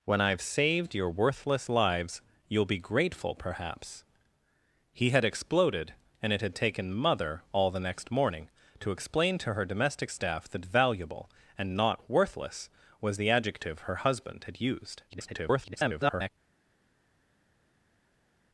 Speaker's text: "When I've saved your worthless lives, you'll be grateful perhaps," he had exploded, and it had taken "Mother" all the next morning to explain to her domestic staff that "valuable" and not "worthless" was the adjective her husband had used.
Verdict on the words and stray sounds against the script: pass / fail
fail